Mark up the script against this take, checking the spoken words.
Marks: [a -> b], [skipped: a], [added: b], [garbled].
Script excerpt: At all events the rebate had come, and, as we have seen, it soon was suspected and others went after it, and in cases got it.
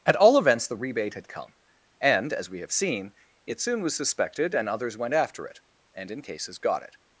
At all events the rebate had come, and, as we have seen, it soon was suspected and others went after it, and in cases got it.